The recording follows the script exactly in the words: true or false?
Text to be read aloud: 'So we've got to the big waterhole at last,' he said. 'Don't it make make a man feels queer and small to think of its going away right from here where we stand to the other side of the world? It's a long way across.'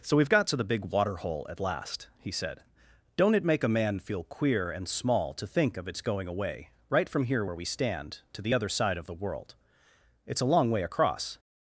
false